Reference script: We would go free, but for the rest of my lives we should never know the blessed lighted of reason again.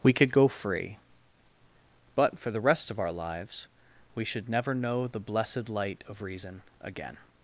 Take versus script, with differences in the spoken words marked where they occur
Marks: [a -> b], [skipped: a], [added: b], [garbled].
We [would -> could] go free, but for the rest of [my -> our] lives we should never know the blessed [lighted -> light] of reason again.